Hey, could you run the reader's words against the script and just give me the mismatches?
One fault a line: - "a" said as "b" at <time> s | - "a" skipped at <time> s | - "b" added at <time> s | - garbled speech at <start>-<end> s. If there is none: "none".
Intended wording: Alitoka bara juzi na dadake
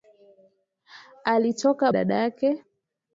- "bara juzi na" skipped at 1.9 s